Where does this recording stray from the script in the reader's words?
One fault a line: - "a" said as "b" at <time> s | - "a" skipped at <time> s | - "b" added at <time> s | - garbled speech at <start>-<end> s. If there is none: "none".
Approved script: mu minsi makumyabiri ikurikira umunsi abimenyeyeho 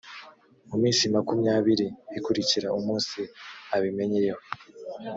none